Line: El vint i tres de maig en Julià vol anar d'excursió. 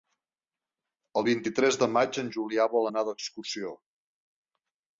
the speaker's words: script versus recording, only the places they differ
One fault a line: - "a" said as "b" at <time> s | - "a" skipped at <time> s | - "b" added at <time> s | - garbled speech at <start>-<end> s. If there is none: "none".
none